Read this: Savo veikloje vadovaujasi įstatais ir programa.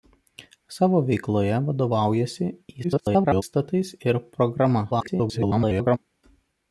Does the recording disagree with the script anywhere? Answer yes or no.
yes